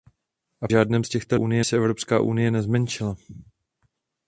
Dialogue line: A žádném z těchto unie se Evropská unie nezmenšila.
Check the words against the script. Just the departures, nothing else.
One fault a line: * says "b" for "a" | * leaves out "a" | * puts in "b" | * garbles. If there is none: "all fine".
all fine